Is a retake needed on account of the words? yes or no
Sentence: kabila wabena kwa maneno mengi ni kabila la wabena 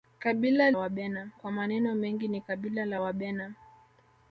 no